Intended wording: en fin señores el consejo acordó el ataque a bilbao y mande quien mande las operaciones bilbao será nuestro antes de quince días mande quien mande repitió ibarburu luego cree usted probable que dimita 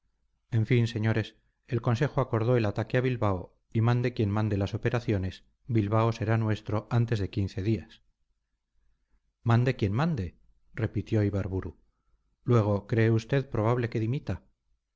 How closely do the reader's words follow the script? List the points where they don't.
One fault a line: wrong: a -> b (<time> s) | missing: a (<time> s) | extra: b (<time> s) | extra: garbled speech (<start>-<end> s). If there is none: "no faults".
no faults